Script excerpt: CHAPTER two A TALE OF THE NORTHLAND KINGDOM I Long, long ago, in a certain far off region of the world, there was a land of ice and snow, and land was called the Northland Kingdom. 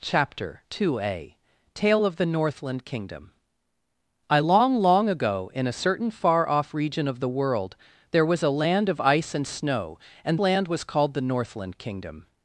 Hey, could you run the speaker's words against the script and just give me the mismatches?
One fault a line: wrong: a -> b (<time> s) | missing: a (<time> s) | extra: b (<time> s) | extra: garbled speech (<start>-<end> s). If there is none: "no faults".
no faults